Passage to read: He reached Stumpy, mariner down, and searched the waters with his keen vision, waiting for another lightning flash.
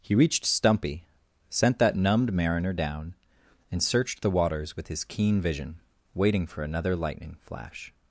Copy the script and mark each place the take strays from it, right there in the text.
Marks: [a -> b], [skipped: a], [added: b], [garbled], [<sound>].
He reached Stumpy, [added: sent that numbed] mariner down, and searched the waters with his keen vision, waiting for another lightning flash.